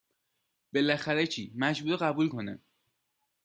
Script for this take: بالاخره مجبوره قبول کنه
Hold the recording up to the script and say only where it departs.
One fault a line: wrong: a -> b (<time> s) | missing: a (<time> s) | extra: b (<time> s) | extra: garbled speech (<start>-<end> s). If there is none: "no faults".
extra: چی (1.3 s)